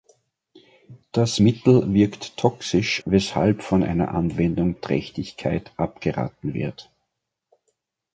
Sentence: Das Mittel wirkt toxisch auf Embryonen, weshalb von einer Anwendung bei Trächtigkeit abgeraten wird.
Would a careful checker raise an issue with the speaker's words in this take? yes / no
yes